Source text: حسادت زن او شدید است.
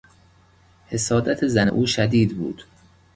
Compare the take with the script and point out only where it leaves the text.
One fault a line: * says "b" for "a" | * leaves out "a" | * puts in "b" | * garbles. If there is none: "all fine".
* says "بود" for "است"